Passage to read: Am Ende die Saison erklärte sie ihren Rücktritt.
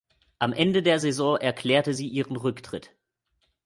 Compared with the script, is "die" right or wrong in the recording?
wrong